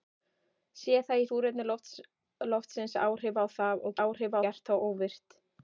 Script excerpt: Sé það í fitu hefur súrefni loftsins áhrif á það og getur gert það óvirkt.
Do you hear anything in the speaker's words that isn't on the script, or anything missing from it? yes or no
yes